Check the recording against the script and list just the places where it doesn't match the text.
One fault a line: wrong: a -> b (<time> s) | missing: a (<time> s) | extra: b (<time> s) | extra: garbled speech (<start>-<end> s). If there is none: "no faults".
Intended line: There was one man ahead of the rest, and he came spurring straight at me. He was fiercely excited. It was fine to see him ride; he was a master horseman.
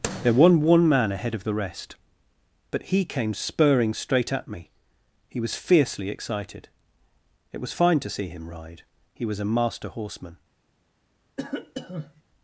wrong: and -> but (2.7 s)